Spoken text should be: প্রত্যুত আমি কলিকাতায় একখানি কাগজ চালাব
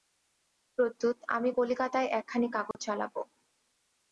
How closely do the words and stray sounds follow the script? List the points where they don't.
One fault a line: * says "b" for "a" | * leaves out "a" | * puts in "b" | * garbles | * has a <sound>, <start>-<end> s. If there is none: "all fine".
* has a dropout, 2.7-2.7 s